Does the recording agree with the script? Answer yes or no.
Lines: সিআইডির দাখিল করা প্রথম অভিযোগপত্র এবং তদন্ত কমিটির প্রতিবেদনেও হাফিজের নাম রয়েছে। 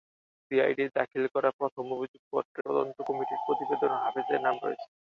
no